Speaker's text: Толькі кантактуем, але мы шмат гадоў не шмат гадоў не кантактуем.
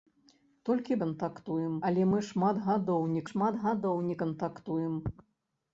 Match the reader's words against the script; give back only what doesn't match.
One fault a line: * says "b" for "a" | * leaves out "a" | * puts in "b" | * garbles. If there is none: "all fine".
all fine